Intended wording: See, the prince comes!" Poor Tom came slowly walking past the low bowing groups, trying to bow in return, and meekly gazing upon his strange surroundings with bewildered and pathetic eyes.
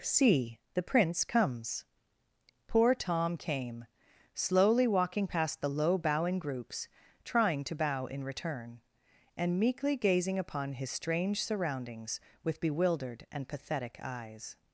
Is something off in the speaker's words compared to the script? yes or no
no